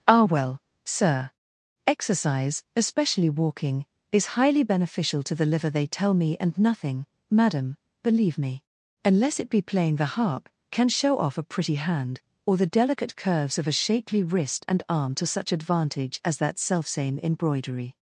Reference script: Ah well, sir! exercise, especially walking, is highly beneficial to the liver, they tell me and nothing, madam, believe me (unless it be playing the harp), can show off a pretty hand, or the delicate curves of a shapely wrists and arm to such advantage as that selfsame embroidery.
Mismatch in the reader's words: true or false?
true